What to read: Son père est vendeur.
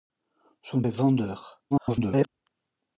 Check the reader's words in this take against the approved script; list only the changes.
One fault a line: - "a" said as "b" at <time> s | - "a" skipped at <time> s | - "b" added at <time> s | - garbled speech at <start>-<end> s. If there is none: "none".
- "père" skipped at 0.8 s
- garbled speech at 1.7-2.3 s